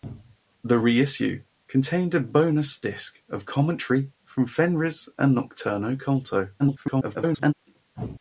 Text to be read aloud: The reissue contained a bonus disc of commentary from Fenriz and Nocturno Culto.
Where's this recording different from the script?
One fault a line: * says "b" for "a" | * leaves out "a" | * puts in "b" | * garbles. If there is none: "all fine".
* garbles